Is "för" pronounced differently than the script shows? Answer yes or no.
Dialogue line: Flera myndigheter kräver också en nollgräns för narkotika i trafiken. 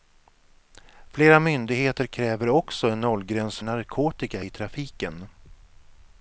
yes